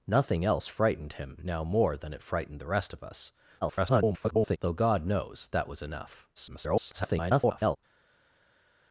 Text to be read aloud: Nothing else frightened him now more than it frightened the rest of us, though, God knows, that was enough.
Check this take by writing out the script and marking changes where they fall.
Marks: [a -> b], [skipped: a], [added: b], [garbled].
Nothing else frightened him now more than it frightened the rest of us, [garbled] though, God knows, that was enough. [garbled]